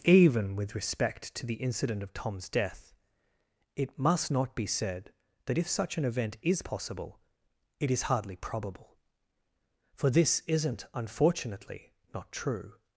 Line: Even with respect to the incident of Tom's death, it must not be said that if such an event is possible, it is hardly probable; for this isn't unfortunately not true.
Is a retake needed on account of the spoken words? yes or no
no